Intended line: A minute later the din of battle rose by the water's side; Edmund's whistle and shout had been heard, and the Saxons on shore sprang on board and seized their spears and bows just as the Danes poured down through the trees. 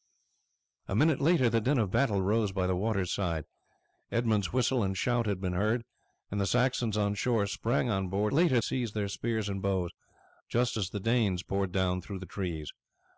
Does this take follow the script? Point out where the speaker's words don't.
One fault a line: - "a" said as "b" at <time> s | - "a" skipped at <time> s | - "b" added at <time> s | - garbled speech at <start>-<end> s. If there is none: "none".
- "and" said as "later" at 8.3 s